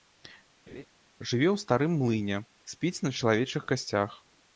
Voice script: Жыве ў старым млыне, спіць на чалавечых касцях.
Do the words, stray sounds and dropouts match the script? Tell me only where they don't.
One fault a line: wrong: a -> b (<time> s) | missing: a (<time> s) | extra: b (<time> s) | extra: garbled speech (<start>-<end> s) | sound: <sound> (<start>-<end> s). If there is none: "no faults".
sound: laugh (0.7-0.9 s)